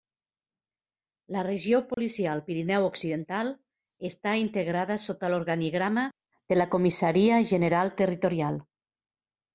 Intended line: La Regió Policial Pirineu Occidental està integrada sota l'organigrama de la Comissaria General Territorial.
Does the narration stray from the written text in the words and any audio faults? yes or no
yes